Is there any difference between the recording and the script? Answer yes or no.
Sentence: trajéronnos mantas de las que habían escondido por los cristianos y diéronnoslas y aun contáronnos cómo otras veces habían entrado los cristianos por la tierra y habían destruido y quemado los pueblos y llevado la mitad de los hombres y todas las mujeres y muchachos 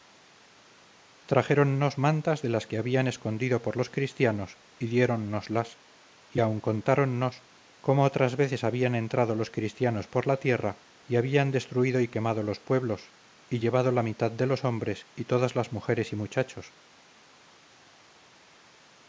no